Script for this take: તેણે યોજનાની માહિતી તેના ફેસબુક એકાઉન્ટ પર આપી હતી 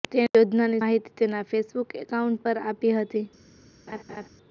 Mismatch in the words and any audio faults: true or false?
true